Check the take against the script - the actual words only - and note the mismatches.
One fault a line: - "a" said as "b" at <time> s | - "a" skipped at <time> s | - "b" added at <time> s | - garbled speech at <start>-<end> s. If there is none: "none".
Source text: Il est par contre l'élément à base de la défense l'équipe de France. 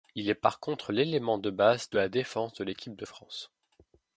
- "à" said as "de" at 1.4 s
- "de" added at 2.5 s